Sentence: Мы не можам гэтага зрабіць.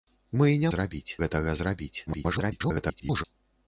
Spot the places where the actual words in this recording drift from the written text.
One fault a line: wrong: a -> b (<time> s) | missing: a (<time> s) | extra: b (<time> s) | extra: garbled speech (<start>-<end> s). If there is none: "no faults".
wrong: можам -> зрабіць (0.7 s)
extra: garbled speech (2.1-3.2 s)